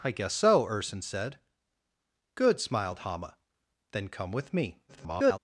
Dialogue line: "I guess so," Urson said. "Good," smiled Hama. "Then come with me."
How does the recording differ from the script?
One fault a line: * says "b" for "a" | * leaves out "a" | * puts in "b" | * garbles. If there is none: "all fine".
* garbles